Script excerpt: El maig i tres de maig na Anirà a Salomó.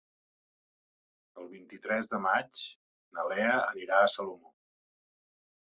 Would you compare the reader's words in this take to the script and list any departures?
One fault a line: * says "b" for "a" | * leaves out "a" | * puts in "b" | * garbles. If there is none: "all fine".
* says "vint" for "maig"
* puts in "Lea"